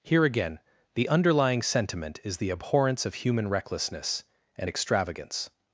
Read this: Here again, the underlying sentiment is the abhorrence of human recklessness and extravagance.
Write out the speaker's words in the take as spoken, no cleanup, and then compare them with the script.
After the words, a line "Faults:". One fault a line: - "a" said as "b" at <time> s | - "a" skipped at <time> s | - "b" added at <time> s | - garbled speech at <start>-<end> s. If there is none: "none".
Here again, the underlying sentiment is the abhorrence of human recklessness and extravagance.
Faults:
none